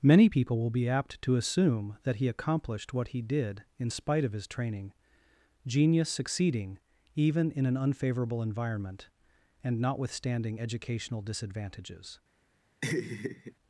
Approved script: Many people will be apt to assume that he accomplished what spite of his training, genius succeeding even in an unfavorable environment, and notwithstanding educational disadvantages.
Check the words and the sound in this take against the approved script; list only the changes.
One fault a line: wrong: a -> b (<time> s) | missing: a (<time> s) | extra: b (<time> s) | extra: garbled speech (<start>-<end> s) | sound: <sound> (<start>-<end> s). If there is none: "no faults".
extra: he did in (3.1 s)
sound: laugh (12.8-13.5 s)